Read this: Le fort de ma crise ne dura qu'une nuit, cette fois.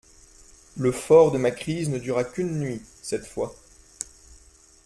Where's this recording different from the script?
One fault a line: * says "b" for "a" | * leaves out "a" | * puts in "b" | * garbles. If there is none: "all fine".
all fine